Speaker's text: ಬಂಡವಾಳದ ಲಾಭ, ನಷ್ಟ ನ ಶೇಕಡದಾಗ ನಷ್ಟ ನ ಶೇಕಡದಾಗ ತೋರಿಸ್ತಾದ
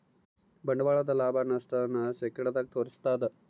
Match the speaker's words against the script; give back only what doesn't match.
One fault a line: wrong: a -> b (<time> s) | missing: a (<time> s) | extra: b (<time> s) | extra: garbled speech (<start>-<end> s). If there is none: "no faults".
missing: ನಷ್ಟ ನ ಶೇಕಡದಾಗ (2.7 s)